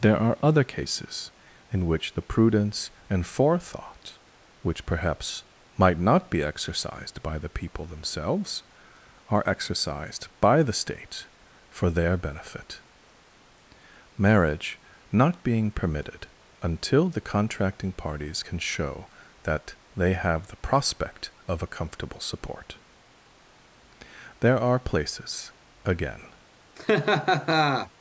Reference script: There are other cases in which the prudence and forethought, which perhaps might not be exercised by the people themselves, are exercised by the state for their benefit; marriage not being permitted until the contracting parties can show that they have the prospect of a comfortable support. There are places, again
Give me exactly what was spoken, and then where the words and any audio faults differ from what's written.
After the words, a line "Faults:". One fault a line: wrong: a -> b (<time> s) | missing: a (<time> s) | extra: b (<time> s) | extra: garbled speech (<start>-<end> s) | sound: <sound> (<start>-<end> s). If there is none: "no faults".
There are other cases in which the prudence and forethought, which perhaps might not be exercised by the people themselves, are exercised by the state for their benefit; marriage not being permitted until the contracting parties can show that they have the prospect of a comfortable support. There are places, again
Faults:
sound: laugh (26.8-27.9 s)